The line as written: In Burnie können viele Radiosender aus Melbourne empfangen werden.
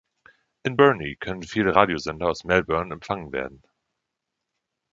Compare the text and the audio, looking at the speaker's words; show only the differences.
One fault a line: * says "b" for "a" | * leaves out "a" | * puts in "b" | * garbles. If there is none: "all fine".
all fine